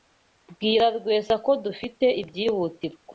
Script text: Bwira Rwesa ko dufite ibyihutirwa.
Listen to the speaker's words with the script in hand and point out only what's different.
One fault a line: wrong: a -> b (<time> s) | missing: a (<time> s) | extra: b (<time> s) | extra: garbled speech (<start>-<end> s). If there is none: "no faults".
no faults